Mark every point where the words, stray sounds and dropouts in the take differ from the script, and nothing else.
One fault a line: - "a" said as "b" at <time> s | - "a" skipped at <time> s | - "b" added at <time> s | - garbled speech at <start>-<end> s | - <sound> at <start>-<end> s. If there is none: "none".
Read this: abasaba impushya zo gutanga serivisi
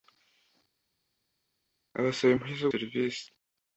- "gutanga" skipped at 2.7 s